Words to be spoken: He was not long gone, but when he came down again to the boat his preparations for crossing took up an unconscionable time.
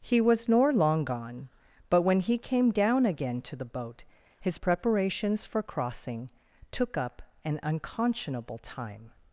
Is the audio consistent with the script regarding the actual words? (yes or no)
no